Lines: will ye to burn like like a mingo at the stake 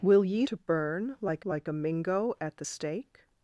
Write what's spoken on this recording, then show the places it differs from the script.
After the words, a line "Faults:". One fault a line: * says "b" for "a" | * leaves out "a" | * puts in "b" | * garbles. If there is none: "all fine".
will ye to burn like like a mingo at the stake
Faults:
all fine